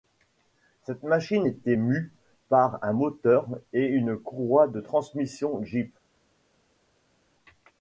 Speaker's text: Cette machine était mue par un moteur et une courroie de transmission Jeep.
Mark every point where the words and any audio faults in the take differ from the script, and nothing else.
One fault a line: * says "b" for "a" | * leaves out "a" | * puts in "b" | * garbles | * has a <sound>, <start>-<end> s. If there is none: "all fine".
all fine